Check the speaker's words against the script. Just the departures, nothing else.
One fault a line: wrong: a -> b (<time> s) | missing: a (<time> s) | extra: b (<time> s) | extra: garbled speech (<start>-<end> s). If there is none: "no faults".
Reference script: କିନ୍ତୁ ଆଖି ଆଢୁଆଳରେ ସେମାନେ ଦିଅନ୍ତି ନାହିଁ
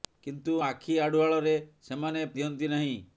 no faults